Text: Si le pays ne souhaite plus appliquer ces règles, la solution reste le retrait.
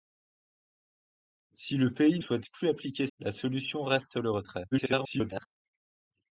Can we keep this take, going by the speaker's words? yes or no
no